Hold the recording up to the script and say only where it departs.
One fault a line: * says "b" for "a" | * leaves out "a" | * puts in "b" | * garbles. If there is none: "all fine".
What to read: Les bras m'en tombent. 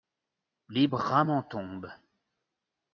all fine